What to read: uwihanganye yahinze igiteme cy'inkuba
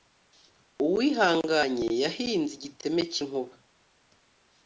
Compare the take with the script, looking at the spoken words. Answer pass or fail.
pass